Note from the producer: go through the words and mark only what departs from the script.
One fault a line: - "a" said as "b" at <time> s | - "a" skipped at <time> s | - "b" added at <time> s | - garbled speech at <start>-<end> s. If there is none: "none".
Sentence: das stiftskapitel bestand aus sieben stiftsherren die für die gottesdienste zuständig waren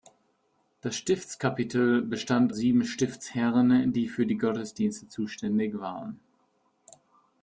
- "aus" skipped at 2.5 s